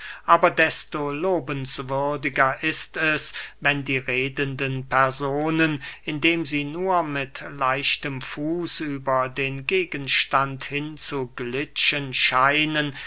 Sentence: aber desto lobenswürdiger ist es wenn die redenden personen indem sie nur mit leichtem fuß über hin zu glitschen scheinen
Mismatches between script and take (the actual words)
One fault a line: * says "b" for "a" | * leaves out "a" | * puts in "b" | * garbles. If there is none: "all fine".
* puts in "den gegenstand"